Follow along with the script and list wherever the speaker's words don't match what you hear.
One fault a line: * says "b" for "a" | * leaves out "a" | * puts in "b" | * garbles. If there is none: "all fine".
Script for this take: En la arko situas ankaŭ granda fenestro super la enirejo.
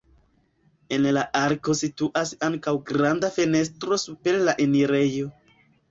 all fine